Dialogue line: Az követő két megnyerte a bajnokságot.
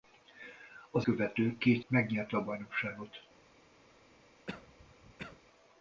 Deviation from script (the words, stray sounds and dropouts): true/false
true